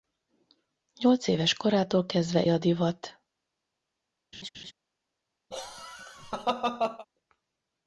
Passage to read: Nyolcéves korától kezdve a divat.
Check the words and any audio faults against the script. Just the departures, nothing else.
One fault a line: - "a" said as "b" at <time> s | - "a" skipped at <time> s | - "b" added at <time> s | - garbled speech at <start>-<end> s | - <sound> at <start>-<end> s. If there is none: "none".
- laugh at 4.3-4.7 s
- laugh at 5.5-7.1 s